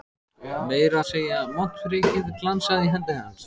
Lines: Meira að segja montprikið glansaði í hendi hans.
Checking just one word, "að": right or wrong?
right